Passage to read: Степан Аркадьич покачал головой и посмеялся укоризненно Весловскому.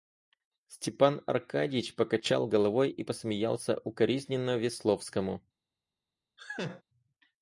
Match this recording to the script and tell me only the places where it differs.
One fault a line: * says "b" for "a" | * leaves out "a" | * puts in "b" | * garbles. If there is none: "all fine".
all fine